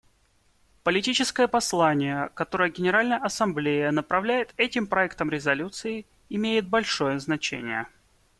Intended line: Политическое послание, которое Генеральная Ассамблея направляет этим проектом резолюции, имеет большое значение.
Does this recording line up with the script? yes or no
yes